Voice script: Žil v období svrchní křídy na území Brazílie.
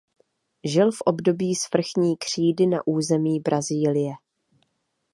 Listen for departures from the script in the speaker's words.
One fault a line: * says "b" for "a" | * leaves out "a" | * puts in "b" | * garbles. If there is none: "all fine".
all fine